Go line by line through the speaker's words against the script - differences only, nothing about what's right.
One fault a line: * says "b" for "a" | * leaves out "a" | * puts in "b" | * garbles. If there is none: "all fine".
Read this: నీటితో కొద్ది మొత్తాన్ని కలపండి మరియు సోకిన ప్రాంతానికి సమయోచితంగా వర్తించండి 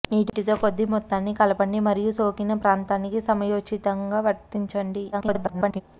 * garbles